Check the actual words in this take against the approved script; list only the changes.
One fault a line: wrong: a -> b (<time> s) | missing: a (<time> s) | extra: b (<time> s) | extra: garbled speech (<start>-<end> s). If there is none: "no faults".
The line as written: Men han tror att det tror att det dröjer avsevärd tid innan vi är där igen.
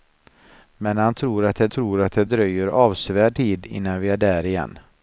no faults